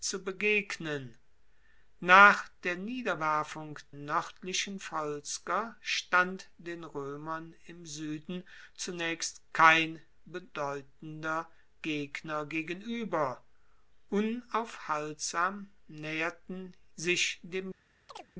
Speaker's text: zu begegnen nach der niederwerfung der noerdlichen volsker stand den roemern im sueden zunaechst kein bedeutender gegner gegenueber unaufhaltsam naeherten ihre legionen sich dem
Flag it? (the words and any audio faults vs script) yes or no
yes